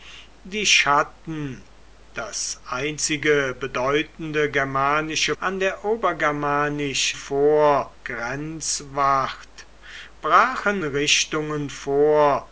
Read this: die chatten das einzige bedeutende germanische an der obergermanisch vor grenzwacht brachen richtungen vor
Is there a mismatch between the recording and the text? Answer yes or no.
no